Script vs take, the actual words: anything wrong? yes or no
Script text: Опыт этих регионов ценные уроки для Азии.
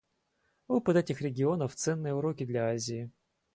no